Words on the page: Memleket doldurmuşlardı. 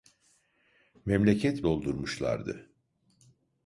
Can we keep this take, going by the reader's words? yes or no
yes